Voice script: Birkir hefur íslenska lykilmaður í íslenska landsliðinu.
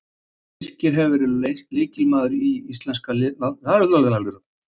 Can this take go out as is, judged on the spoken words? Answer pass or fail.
fail